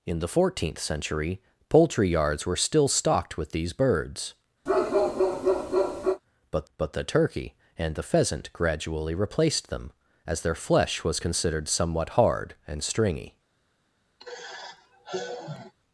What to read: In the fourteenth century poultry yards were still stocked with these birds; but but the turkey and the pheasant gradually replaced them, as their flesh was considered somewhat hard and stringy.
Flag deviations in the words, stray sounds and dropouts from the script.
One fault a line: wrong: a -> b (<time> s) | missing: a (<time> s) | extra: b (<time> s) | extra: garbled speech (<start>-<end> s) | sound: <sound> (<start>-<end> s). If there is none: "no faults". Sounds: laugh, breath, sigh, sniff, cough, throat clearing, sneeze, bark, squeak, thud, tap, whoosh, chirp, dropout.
sound: bark (4.7-6.2 s)
sound: sigh (14.2-15.7 s)